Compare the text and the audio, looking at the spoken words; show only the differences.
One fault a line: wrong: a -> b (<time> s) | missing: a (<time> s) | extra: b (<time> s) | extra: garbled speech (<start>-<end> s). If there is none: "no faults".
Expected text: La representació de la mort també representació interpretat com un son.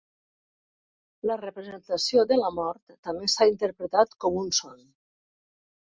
wrong: representació -> s"ha (3.3 s)